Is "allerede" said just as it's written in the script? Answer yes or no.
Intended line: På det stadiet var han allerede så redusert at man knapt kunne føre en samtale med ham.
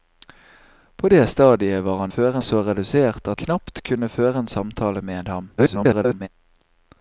no